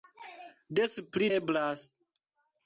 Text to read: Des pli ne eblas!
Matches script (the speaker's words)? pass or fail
fail